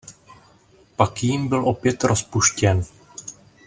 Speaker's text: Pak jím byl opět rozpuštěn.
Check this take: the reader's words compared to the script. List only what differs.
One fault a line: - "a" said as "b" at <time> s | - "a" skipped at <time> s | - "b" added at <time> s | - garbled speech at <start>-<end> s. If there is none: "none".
none